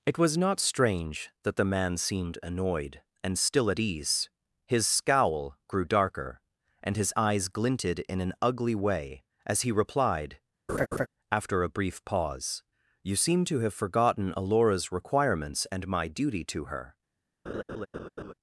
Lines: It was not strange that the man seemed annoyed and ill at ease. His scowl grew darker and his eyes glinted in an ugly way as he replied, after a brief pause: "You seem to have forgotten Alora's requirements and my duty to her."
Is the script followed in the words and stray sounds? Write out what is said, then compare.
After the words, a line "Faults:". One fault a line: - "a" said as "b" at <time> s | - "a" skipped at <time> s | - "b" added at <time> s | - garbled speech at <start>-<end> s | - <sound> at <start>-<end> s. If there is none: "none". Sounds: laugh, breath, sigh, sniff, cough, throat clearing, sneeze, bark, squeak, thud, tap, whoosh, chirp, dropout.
It was not strange that the man seemed annoyed and still at ease. His scowl grew darker and his eyes glinted in an ugly way as he replied, after a brief pause: "You seem to have forgotten Alora's requirements and my duty to her."
Faults:
- "ill" said as "still" at 3.4 s
- laugh at 10.7-11.1 s
- laugh at 17.5-18.3 s